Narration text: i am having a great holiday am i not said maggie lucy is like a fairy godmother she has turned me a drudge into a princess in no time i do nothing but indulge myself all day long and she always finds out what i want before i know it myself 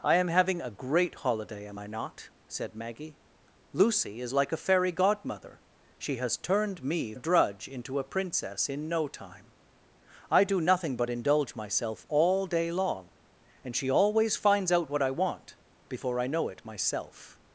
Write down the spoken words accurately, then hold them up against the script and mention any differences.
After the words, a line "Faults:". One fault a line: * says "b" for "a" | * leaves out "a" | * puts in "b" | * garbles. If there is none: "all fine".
i am having a great holiday am i not said maggie lucy is like a fairy godmother she has turned me a drudge into a princess in no time i do nothing but indulge myself all day long and she always finds out what i want before i know it myself
Faults:
all fine